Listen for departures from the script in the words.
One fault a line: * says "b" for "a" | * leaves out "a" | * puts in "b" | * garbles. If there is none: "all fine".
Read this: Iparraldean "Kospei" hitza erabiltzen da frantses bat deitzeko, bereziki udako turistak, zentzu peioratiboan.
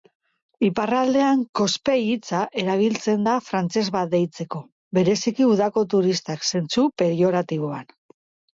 all fine